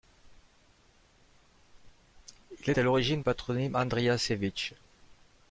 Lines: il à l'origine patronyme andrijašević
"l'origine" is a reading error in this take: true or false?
false